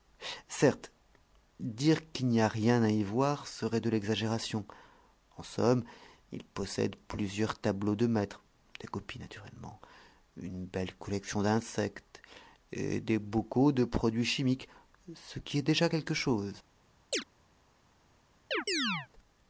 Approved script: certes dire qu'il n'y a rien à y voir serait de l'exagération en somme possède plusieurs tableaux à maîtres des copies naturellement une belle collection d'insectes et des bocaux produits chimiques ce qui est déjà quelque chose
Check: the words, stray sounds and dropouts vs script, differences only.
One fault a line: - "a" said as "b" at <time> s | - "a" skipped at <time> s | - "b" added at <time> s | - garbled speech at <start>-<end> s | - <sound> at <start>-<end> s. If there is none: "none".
- "il" added at 6.3 s
- "à" said as "de" at 8.0 s
- "de" added at 13.7 s
- chirp at 17.1-17.2 s
- chirp at 18.5-19.1 s